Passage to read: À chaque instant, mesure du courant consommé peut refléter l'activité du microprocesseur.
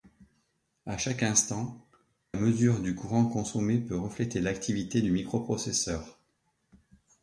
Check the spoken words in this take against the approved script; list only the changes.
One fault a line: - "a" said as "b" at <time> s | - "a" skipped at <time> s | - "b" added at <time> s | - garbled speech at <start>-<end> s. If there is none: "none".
none